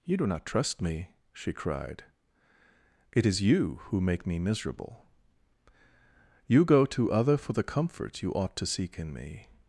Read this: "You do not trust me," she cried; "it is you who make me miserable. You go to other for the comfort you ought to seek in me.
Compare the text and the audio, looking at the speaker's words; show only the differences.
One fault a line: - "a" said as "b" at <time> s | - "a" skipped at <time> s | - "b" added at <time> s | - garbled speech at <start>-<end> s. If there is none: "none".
none